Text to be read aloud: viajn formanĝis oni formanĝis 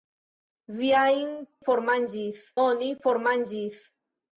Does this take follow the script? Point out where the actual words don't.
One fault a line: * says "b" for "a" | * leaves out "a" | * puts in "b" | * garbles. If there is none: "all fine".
all fine